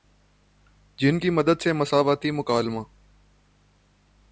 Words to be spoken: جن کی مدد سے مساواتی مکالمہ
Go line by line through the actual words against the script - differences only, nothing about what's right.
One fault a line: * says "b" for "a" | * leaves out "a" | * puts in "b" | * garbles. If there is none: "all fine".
all fine